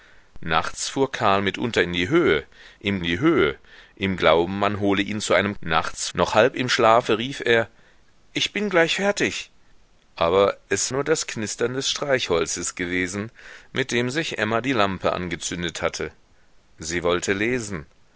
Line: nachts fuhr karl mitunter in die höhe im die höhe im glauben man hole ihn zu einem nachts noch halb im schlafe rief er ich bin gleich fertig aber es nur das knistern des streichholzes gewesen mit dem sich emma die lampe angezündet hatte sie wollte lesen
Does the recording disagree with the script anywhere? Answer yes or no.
no